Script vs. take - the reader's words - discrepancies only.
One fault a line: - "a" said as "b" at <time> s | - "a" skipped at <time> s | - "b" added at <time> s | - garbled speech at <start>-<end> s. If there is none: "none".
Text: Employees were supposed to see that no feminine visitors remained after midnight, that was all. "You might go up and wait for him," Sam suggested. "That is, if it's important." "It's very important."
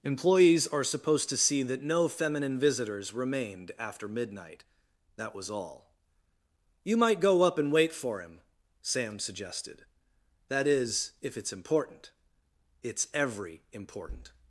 - "were" said as "are" at 0.7 s
- "very" said as "every" at 13.1 s